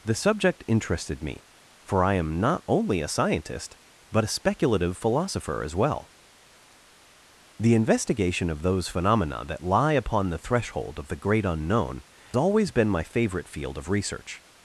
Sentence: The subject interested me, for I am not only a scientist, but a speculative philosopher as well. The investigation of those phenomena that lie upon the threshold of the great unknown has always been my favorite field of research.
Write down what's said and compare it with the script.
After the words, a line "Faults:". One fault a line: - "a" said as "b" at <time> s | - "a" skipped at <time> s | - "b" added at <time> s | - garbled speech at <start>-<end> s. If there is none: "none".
The subject interested me, for I am not only a scientist, but a speculative philosopher as well. The investigation of those phenomena that lie upon the threshold of the great unknown always been my favorite field of research.
Faults:
- "has" skipped at 12.0 s